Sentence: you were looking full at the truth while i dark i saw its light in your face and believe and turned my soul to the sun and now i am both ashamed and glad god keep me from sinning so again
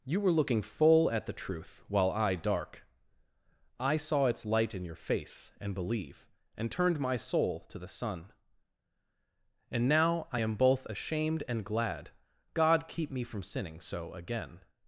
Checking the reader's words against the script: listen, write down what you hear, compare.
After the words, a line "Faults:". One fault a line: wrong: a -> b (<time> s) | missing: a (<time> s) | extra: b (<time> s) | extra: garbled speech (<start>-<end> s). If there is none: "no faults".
you were looking full at the truth while i dark i saw its light in your face and believe and turned my soul to the sun and now i am both ashamed and glad god keep me from sinning so again
Faults:
no faults